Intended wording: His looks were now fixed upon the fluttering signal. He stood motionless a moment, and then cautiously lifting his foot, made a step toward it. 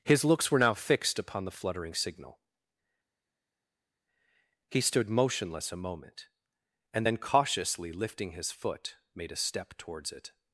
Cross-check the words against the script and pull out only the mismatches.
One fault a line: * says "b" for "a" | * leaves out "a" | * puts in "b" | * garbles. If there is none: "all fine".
* says "towards" for "toward"